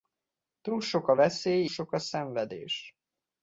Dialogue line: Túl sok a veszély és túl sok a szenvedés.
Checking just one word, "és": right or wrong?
wrong